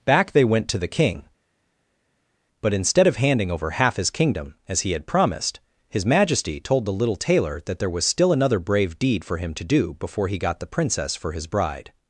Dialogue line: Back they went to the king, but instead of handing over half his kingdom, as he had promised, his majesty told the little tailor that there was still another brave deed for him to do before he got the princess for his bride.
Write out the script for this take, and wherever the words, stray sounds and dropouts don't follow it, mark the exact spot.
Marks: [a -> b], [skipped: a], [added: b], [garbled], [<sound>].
Back they went to the king, but instead of handing over half his kingdom, as he had promised, his majesty told the little tailor that there was still another brave deed for him to do before he got the princess for his bride.